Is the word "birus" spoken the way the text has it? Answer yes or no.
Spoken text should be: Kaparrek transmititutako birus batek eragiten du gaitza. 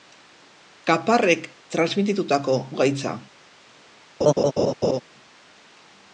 no